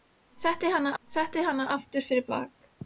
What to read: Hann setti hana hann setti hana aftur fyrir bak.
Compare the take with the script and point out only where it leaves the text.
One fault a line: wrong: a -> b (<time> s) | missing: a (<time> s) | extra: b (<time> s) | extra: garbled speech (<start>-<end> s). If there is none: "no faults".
no faults